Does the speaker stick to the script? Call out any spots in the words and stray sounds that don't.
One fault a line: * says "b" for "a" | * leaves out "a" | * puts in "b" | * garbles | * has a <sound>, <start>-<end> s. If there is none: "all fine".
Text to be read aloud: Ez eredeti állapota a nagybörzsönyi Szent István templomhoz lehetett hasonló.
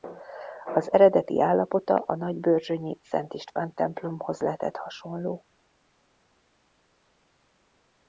* says "Az" for "Ez"